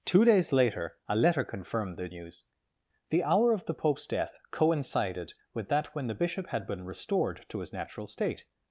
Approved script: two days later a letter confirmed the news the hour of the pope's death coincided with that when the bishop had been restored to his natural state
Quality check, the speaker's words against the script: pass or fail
pass